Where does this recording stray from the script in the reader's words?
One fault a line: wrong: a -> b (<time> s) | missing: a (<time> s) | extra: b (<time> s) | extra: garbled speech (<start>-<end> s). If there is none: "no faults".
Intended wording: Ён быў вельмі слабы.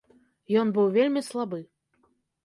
no faults